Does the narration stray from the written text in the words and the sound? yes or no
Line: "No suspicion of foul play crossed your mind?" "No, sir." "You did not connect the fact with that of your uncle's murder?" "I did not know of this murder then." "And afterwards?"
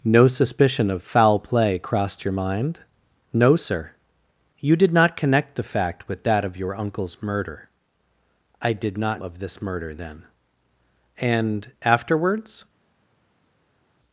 yes